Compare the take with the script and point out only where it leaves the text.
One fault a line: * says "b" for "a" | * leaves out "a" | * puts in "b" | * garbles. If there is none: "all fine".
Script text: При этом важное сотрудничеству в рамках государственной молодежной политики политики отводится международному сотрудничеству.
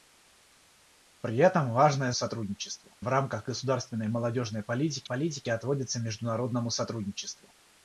all fine